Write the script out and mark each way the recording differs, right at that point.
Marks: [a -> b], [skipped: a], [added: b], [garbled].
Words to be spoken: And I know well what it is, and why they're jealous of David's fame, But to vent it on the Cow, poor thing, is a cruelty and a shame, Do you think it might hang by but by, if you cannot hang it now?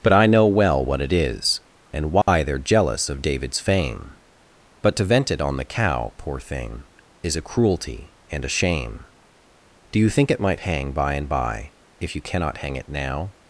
[And -> But] I know well what it is, and why they're jealous of David's fame, But to vent it on the Cow, poor thing, is a cruelty and a shame, Do you think it might hang by [but -> and] by, if you cannot hang it now?